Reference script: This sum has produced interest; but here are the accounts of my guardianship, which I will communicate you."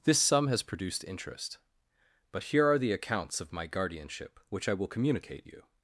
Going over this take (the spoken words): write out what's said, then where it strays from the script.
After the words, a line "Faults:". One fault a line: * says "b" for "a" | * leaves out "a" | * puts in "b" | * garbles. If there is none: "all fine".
This sum has produced interest; but here are the accounts of my guardianship, which I will communicate you."
Faults:
all fine